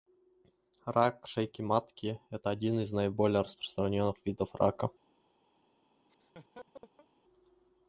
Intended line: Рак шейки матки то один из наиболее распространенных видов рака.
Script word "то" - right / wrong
wrong